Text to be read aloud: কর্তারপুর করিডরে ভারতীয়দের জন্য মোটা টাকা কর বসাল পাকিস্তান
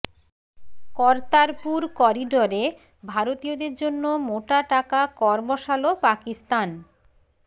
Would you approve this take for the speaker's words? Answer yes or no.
yes